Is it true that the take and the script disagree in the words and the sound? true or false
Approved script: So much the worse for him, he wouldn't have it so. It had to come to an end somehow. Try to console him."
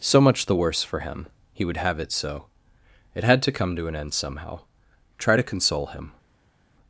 true